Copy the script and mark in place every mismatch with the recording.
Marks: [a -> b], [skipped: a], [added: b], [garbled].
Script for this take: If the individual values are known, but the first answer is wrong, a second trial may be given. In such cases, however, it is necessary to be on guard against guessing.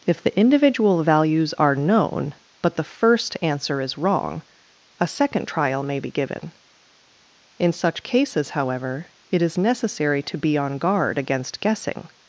If the individual values are known, but the first answer is wrong, a second trial may be given. In such cases, however, it is necessary to be on guard against guessing.